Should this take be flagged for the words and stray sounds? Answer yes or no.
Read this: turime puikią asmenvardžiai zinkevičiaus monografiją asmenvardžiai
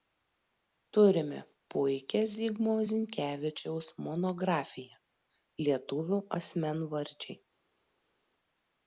yes